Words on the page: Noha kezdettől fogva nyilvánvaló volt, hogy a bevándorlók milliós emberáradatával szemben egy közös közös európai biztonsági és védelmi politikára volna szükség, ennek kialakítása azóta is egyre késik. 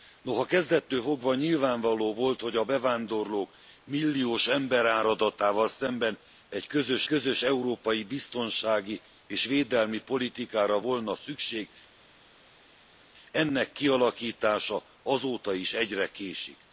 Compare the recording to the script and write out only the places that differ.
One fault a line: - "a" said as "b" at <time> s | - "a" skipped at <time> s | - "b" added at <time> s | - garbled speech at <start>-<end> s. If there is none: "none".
none